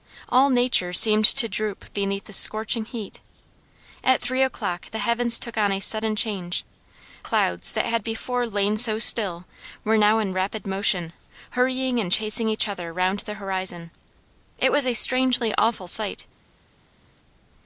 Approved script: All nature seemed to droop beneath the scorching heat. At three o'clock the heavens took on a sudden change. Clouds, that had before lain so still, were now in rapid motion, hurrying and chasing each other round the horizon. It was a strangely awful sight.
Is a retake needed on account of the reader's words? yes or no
no